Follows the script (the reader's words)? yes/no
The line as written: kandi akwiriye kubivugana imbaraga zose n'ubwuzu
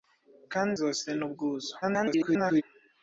no